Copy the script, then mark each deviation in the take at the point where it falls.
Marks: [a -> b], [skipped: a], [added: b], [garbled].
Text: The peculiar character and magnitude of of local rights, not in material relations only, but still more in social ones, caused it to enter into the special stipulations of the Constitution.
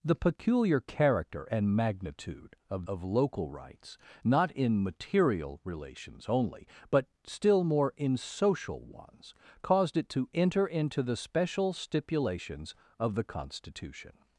The peculiar character and magnitude of of local rights, not in material relations only, but still more in social ones, caused it to enter into the special stipulations of the Constitution.